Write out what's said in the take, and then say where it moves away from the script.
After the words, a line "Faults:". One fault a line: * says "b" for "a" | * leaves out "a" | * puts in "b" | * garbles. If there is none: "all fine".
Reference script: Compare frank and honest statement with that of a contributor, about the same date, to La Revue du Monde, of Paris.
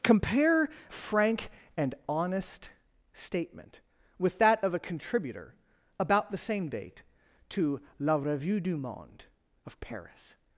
Compare frank and honest statement with that of a contributor, about the same date, to La Revue du Monde, of Paris.
Faults:
all fine